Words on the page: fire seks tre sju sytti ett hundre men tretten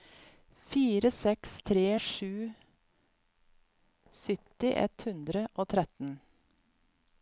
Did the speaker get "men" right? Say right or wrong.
wrong